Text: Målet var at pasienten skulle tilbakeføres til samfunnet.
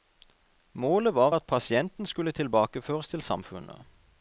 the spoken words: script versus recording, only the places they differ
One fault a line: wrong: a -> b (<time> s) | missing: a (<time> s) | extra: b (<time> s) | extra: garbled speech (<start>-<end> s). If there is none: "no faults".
no faults